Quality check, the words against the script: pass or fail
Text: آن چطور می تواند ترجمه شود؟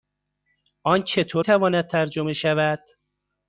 fail